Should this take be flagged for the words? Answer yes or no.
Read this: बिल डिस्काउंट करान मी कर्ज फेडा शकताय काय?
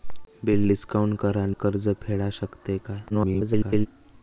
yes